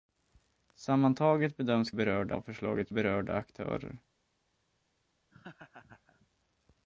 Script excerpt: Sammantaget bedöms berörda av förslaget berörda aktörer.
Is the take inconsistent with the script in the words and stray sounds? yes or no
yes